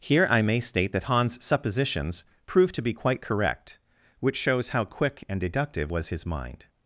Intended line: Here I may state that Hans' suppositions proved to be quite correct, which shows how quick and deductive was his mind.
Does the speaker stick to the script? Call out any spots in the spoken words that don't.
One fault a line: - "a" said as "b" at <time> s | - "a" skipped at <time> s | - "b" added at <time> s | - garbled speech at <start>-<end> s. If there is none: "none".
none